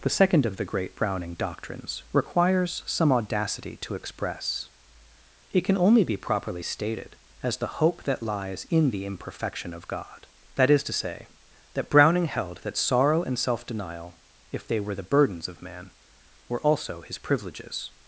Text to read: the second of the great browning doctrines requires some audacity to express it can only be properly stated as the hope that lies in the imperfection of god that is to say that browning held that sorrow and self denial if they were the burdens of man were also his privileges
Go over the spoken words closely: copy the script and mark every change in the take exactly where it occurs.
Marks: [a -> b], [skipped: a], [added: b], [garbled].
the second of the great browning doctrines requires some audacity to express it can only be properly stated as the hope that lies in the imperfection of god that is to say that browning held that sorrow and self denial if they were the burdens of man were also his privileges